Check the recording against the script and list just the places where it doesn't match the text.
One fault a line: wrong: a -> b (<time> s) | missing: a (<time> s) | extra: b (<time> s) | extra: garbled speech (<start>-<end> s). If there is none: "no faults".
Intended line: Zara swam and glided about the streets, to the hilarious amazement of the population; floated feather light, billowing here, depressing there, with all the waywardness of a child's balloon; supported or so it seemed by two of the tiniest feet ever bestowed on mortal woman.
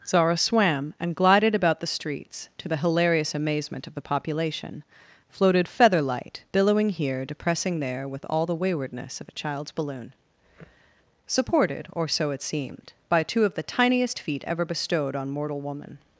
no faults